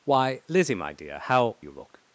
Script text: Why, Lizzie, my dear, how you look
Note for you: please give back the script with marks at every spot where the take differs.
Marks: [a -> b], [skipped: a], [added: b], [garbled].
Why, Lizzie, my dear, how you look